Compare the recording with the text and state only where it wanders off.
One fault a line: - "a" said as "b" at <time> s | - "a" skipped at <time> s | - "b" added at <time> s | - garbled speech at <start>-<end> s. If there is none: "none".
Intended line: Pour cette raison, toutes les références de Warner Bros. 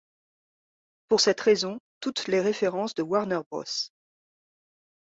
none